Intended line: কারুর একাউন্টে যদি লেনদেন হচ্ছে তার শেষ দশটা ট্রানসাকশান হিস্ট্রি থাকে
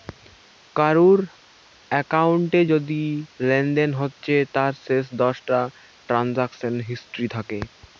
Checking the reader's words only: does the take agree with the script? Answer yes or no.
yes